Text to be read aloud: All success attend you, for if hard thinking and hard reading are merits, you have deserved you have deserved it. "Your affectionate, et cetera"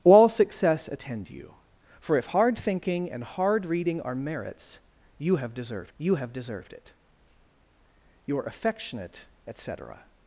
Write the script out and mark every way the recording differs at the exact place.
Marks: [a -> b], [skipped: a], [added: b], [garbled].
All success attend you, for if hard thinking and hard reading are merits, you have deserved you have deserved it. "Your affectionate, et cetera"